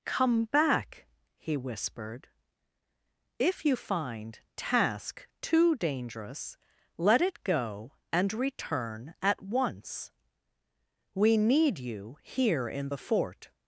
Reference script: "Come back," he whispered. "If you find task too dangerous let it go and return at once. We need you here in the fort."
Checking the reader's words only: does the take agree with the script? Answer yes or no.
yes